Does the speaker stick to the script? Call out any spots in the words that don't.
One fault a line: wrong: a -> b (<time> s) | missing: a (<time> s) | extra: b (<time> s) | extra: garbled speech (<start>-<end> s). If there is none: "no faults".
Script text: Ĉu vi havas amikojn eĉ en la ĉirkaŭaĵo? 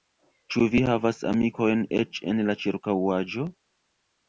no faults